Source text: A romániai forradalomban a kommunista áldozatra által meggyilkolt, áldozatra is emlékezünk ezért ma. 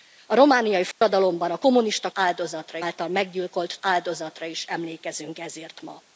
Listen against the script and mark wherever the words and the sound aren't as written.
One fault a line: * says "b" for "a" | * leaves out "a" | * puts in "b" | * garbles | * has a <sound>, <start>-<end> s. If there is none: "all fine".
* has a dropout, 0.9-1.0 s